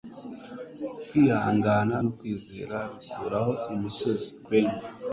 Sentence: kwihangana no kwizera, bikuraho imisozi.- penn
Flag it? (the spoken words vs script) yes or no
no